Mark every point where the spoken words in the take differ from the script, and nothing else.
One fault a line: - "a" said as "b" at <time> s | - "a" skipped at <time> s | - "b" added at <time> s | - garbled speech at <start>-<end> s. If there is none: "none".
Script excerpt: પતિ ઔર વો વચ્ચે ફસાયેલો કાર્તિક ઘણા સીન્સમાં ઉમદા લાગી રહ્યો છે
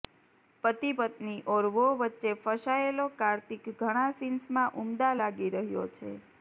- "પત્ની" added at 1.0 s